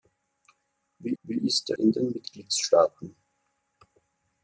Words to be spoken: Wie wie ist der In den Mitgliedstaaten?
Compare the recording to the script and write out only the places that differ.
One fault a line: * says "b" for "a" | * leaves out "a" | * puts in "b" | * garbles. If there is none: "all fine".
all fine